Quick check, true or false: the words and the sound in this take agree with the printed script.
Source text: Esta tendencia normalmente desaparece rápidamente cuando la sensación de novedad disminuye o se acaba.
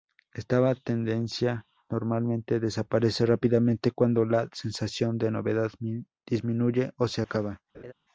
false